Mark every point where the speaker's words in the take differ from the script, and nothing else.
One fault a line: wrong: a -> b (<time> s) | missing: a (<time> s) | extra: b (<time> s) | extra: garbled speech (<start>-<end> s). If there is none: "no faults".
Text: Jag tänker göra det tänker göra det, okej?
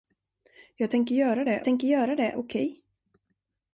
no faults